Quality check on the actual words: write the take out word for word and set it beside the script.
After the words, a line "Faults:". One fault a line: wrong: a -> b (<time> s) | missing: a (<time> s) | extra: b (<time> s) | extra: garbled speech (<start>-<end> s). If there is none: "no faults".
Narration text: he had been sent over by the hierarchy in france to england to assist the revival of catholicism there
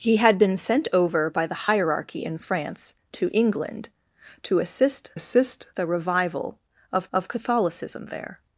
he had been sent over by the hierarchy in france to england to assist assist the revival of of catholicism there
Faults:
extra: assist (5.1 s)
extra: of (7.1 s)